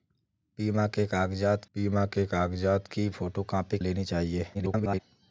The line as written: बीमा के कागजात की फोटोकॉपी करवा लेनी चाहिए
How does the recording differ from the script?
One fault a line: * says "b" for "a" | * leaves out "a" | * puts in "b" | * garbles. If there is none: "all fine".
* puts in "बीमा के कागजात"
* leaves out "करवा"
* garbles